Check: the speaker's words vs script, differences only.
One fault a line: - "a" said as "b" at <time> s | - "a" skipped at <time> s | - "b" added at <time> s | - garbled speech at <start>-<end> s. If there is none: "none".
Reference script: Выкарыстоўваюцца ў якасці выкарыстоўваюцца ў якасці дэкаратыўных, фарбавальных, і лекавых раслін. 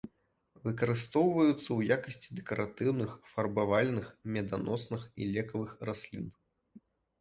- "выкарыстоўваюцца ў якасці" skipped at 2.3 s
- "меданосных" added at 4.3 s